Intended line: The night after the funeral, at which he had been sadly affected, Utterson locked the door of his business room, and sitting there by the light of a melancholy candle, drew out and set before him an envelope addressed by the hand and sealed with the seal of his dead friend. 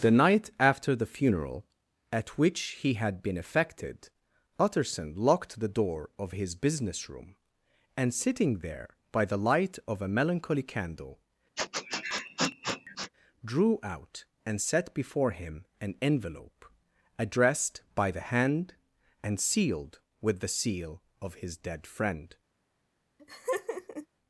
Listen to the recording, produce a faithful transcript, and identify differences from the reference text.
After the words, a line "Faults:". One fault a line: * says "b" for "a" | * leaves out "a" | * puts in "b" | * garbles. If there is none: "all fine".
The night after the funeral, at which he had been affected, Utterson locked the door of his business room, and sitting there by the light of a melancholy candle, drew out and set before him an envelope addressed by the hand and sealed with the seal of his dead friend.
Faults:
* leaves out "sadly"